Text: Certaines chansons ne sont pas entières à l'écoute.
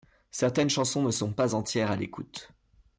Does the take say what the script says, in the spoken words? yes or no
yes